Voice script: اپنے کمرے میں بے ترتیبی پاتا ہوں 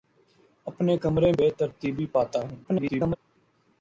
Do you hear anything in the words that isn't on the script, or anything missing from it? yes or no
yes